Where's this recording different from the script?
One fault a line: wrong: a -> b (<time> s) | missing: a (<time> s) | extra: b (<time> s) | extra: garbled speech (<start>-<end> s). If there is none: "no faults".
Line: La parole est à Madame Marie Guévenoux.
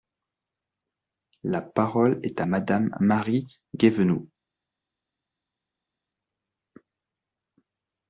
no faults